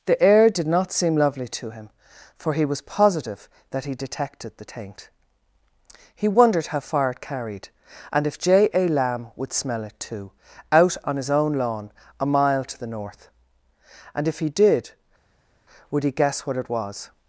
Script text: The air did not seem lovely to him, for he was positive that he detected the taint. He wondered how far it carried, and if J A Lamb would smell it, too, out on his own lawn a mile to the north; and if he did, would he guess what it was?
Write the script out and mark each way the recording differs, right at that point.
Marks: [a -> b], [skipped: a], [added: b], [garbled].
The air did not seem lovely to him, for he was positive that he detected the taint. He wondered how far it carried, and if J A Lamb would smell it, too, out on his own lawn a mile to the north; and if he did, would he guess what it was?